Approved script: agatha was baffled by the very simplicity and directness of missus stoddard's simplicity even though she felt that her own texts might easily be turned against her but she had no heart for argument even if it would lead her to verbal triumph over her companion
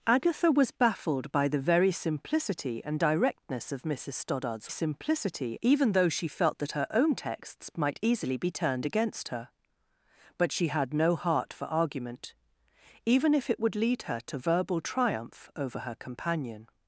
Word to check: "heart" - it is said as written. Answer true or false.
true